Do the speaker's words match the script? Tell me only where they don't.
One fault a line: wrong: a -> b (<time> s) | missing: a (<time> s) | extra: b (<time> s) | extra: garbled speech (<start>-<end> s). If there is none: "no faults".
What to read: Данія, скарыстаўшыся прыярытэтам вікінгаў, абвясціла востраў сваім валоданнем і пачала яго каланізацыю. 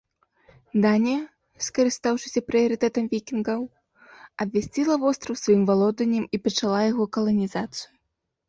no faults